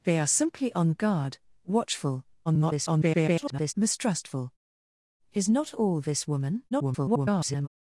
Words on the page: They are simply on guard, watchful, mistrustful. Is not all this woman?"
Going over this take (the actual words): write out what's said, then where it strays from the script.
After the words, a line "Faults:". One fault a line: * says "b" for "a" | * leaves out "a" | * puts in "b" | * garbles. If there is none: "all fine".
They are simply on guard, watchful, [garbled] mistrustful. Is not all this woman?" [garbled]
Faults:
* garbles
* garbles